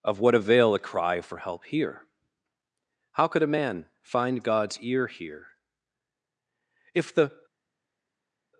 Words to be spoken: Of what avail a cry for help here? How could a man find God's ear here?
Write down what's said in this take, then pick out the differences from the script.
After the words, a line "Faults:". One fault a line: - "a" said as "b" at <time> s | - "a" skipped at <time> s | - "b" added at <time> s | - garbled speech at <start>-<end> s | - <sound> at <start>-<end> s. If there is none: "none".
Of what avail a cry for help here? How could a man find God's ear here? If the
Faults:
- "If the" added at 6.9 s